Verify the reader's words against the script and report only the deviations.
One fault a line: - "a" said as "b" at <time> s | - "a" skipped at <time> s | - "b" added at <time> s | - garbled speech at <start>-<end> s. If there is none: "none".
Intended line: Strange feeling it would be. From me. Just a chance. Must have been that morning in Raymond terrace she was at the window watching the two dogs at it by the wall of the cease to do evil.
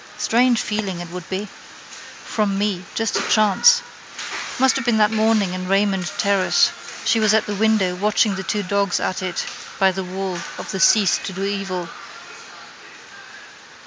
none